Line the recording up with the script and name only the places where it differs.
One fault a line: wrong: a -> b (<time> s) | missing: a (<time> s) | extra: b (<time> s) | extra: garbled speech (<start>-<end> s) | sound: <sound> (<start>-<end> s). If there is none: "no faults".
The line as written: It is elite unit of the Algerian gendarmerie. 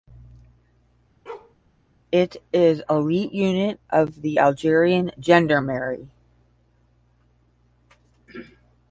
sound: bark (1.3-1.6 s)